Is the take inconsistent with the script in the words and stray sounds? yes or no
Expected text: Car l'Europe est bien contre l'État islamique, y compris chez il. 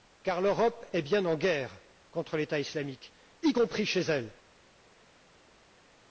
yes